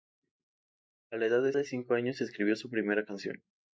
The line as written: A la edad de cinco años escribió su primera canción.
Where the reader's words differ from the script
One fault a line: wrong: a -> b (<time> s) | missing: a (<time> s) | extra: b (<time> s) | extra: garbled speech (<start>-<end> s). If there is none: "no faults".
extra: de (1.5 s)